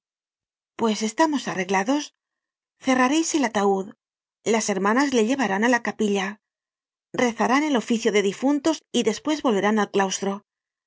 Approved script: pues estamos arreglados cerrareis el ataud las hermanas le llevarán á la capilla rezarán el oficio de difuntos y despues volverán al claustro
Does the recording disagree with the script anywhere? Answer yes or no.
no